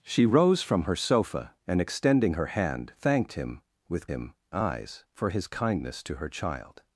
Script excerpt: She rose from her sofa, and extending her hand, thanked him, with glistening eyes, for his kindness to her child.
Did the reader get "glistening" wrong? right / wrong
wrong